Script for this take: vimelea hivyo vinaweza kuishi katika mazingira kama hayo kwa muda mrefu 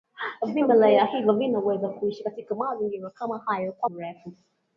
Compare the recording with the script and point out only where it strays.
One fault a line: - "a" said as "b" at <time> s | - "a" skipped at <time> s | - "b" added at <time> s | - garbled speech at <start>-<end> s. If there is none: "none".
- "muda" skipped at 3.9 s